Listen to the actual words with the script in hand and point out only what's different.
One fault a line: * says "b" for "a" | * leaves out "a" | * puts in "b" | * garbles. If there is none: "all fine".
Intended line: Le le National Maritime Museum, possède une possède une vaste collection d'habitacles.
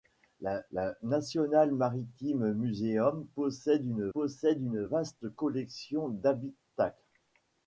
all fine